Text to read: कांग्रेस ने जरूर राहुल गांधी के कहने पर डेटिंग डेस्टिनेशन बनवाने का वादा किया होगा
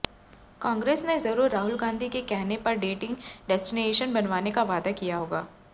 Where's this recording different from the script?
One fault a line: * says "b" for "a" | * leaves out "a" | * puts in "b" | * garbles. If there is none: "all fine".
all fine